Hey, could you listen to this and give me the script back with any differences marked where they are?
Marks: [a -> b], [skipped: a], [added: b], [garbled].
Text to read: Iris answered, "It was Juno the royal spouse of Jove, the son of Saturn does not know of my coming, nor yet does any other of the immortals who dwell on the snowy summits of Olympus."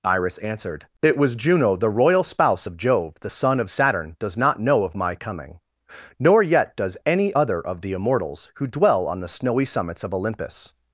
Iris answered, "It was Juno the royal spouse of Jove, the son of Saturn does not know of my coming, nor yet does any other of the immortals who dwell on the snowy summits of Olympus."